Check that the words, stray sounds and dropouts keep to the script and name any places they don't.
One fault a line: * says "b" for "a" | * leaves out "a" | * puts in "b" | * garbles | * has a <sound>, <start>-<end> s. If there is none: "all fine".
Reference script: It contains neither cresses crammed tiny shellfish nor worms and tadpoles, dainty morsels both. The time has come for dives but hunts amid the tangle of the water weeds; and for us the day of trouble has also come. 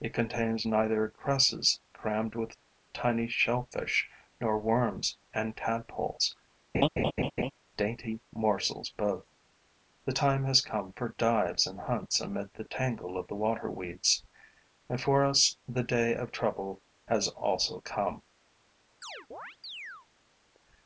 * puts in "with"
* has a laugh, 6.7-7.5 s
* says "and" for "but"
* has a chirp, 19.0-20.1 s